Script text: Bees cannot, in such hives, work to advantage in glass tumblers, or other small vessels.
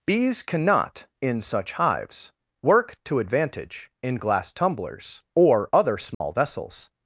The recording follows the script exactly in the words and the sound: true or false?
false